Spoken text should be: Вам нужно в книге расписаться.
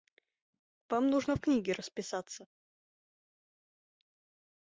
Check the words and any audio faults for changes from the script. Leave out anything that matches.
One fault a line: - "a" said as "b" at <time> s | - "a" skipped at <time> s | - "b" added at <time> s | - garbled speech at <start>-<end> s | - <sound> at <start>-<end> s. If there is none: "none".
none